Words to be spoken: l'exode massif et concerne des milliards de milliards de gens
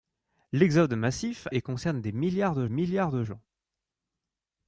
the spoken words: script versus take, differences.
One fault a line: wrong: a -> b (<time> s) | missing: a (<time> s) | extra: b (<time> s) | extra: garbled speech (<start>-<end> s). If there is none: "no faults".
no faults